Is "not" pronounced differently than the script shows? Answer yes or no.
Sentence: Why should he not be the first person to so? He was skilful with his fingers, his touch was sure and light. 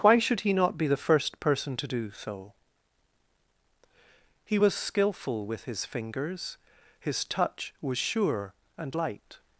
no